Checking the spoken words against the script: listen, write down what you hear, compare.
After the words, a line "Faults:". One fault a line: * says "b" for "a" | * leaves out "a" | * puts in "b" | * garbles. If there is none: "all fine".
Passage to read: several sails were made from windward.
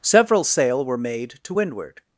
several sail were made to windward.
Faults:
* says "sail" for "sails"
* says "to" for "from"